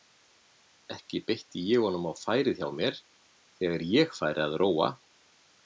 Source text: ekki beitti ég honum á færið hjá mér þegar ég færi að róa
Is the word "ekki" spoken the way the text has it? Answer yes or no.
yes